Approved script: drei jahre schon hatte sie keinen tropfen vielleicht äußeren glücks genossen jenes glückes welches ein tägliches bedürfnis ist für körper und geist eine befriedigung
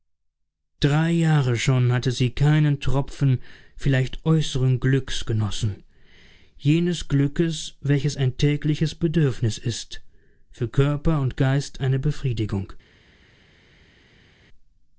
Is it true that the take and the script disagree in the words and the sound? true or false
false